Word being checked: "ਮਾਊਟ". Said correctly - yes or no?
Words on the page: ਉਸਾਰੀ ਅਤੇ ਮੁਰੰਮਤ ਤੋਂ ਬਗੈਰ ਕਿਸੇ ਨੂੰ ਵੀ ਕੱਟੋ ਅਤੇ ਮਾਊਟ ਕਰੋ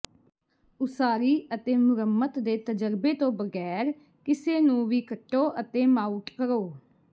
yes